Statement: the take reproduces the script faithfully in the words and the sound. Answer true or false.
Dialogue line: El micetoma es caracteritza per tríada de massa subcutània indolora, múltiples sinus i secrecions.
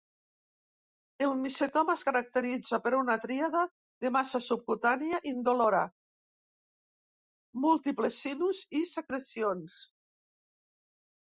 false